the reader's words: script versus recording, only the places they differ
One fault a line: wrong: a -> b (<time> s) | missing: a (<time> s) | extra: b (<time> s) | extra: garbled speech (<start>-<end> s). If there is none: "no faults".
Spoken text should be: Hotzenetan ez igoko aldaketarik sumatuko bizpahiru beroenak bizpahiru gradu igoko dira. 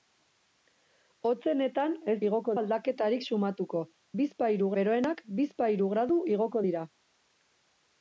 no faults